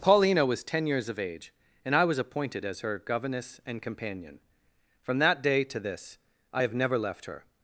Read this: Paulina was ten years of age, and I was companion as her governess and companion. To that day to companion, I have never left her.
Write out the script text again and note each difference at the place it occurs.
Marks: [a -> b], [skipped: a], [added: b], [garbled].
Paulina was ten years of age, and I was [companion -> appointed] as her governess and companion. [To -> From] that day to [companion, -> this] I have never left her.